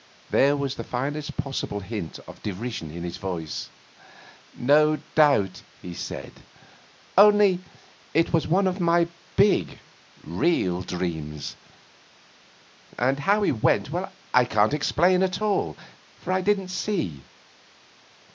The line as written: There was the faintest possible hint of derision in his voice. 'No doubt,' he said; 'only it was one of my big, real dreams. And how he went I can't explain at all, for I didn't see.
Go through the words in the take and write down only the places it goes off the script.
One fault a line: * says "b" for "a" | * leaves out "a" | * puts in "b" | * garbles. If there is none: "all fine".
all fine